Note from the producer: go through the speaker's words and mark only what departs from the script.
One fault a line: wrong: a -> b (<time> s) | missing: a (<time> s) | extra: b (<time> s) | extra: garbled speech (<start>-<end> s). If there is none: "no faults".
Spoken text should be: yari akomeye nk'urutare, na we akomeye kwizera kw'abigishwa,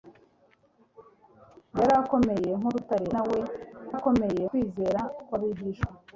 no faults